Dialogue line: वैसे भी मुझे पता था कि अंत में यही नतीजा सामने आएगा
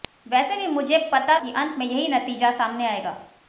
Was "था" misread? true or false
true